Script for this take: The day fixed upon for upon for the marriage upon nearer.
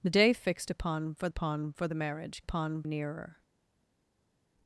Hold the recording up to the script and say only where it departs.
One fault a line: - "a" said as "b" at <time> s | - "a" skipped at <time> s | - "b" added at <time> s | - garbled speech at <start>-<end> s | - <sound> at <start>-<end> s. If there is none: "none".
none